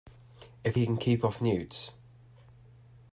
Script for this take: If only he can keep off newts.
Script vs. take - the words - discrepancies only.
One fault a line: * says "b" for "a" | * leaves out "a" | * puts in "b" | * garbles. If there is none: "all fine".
* leaves out "only"